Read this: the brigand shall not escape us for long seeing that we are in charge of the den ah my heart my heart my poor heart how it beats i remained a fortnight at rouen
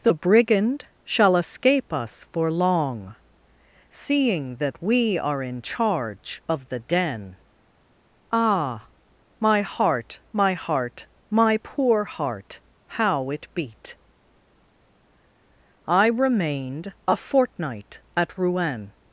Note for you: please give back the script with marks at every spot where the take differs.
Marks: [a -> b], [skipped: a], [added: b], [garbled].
the brigand shall [skipped: not] escape us for long seeing that we are in charge of the den ah my heart my heart my poor heart how it [beats -> beat] i remained a fortnight at rouen